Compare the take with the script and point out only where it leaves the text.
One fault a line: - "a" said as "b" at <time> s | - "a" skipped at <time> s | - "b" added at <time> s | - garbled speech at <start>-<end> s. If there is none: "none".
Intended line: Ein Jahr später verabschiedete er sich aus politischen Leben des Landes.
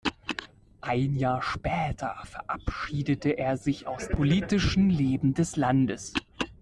none